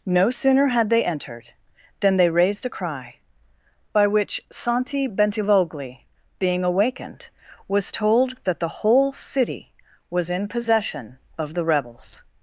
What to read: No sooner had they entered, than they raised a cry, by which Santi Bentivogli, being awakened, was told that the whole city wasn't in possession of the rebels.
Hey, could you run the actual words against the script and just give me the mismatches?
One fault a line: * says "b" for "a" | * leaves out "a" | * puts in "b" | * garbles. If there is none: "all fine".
* says "was" for "wasn't"